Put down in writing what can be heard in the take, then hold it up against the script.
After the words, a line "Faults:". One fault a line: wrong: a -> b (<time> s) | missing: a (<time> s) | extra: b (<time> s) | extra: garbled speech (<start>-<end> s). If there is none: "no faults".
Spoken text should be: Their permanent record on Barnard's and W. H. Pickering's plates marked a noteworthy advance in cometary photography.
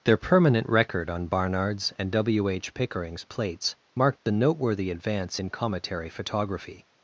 Their permanent record on Barnard's and W. H. Pickering's plates marked the noteworthy advance in cometary photography.
Faults:
wrong: a -> the (4.2 s)